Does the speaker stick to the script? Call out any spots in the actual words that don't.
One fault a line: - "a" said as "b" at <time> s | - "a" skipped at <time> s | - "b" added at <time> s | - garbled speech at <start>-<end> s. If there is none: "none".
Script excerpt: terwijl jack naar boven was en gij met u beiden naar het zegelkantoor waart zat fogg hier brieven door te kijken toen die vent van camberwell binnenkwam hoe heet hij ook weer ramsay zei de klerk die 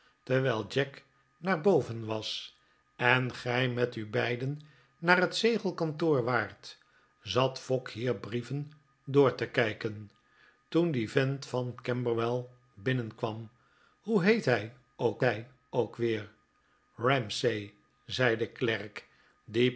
- "hij ook" added at 15.2 s